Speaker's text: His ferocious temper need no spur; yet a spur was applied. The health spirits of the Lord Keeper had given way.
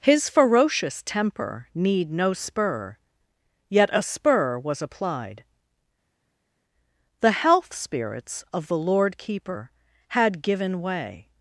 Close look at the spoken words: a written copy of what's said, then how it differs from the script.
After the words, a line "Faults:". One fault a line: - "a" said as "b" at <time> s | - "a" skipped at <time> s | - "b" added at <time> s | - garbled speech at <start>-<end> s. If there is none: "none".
His ferocious temper need no spur; yet a spur was applied. The health spirits of the Lord Keeper had given way.
Faults:
none